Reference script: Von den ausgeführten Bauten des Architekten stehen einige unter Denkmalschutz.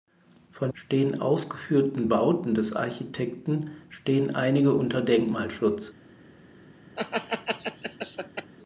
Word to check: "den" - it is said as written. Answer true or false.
false